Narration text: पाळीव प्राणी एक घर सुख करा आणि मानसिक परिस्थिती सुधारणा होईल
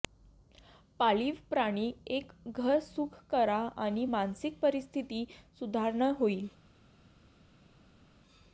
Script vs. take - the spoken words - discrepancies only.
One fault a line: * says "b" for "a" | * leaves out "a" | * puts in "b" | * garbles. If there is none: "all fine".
all fine